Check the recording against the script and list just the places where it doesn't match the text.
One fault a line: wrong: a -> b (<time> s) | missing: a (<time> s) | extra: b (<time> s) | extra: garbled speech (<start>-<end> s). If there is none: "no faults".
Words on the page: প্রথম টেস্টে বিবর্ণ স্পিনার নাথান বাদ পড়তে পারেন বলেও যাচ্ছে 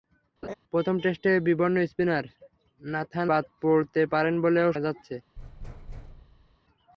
no faults